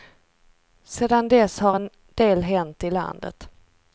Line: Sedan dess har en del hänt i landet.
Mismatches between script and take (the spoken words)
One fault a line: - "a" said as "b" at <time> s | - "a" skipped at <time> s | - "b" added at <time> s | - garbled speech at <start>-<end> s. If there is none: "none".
none